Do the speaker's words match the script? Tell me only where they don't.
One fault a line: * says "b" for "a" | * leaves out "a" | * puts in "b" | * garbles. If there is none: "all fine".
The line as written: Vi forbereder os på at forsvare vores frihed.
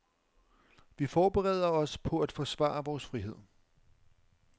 all fine